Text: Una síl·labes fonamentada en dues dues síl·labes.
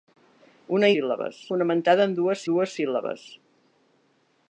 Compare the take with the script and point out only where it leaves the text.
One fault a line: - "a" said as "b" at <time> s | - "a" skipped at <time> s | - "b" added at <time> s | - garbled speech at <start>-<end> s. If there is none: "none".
none